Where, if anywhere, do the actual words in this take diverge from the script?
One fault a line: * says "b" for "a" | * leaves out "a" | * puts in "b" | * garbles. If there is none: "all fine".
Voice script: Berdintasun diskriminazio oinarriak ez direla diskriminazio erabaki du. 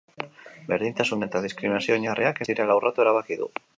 * puts in "eta"
* says "urratu" for "diskriminazio"